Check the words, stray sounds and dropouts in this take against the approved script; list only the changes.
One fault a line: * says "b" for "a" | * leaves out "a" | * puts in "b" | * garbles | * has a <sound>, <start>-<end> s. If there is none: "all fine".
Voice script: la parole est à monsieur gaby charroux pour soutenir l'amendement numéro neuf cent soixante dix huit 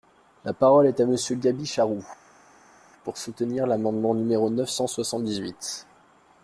all fine